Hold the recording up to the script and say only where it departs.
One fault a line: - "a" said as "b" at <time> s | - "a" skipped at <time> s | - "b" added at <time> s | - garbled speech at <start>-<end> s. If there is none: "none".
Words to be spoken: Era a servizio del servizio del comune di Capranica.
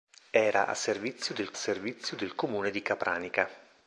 none